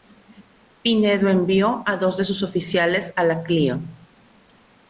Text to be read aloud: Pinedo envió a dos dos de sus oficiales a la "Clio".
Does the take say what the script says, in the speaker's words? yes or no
no